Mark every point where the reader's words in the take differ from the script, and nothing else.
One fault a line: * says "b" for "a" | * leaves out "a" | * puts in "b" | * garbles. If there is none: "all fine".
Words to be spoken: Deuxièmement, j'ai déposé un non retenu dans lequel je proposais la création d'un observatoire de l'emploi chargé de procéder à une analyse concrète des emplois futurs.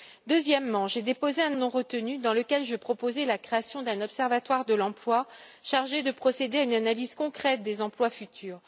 all fine